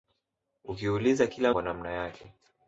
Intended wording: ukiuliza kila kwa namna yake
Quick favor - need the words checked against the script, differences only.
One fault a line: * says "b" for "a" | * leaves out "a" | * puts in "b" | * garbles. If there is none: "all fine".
all fine